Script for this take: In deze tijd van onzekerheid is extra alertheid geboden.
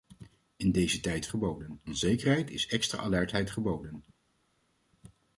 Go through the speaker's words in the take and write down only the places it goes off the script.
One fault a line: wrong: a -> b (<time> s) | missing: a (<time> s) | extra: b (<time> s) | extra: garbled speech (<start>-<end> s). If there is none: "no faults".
wrong: van -> geboden (1.3 s)